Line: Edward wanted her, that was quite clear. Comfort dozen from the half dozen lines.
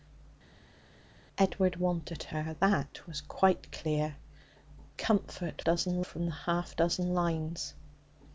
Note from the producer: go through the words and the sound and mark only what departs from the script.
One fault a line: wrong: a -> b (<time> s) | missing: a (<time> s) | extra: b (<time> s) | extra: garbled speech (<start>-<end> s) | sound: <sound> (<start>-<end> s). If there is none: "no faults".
no faults